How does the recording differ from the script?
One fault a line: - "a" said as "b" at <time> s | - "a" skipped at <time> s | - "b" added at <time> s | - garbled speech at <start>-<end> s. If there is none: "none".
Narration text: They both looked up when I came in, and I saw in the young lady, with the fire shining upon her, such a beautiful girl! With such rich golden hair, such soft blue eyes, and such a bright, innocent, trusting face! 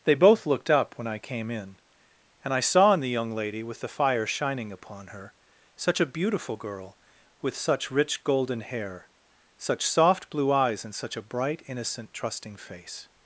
none